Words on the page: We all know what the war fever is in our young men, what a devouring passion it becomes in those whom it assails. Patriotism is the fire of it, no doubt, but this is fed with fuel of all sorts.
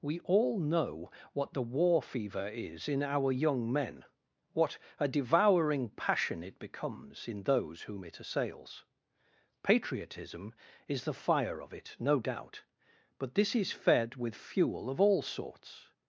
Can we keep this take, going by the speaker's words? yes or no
yes